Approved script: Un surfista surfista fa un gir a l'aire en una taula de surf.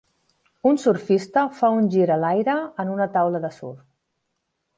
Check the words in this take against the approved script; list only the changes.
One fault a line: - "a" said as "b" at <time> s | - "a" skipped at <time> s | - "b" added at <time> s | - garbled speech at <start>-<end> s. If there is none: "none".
- "surfista" skipped at 1.4 s